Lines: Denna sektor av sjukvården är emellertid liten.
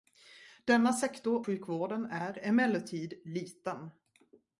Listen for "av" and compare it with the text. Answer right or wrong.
wrong